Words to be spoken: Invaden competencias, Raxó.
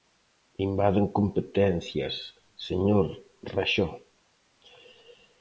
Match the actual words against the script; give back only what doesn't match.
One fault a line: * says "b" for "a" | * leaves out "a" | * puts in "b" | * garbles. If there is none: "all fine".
* puts in "señor"